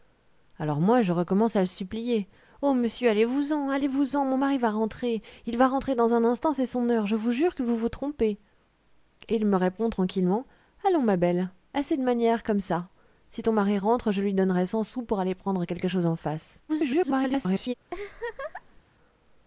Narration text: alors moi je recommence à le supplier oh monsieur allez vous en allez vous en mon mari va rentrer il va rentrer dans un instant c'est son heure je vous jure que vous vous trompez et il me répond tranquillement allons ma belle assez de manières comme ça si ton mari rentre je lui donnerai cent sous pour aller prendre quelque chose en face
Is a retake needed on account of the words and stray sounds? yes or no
yes